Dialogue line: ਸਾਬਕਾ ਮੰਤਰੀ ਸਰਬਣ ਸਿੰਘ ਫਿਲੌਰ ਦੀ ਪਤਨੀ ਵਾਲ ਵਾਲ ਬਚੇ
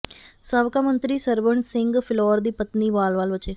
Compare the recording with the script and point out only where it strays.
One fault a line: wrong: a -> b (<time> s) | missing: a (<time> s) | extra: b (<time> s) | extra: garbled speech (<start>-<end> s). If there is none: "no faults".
no faults